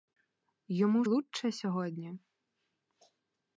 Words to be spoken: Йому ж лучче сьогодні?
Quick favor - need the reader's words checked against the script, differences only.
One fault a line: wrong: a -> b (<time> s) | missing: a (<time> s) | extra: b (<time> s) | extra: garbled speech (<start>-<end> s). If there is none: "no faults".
missing: ж (1.1 s)